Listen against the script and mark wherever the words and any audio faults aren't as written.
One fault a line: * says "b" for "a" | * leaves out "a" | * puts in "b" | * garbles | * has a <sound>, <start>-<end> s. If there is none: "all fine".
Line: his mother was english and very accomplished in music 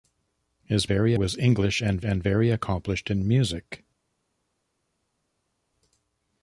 * says "very" for "mother"
* puts in "and"